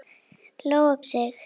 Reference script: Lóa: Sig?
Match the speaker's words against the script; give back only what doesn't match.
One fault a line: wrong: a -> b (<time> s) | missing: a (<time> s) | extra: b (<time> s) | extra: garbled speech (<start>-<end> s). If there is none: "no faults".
no faults